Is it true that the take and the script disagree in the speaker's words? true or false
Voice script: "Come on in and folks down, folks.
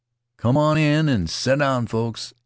true